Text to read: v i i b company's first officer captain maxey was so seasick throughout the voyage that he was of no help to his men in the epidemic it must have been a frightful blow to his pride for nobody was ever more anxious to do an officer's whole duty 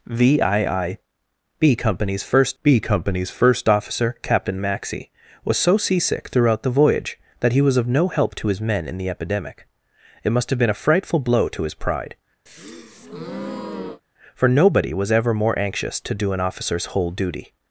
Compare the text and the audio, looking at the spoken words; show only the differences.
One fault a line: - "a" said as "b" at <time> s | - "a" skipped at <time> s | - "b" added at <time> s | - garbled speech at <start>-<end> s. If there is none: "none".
- "b company's first" added at 2.6 s